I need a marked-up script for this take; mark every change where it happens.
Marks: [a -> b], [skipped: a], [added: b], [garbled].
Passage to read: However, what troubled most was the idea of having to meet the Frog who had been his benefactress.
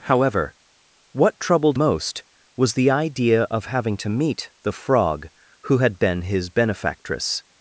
However, what troubled most was the idea of having to meet the Frog who had been his benefactress.